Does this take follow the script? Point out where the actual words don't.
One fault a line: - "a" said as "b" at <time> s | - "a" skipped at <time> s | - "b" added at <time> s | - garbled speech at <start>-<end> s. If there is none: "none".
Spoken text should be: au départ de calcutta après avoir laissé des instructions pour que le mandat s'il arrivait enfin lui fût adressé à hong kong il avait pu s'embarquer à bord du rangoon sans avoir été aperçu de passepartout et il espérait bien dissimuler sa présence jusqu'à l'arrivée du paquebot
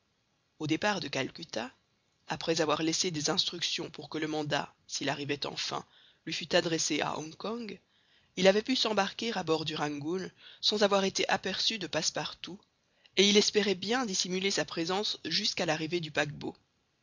none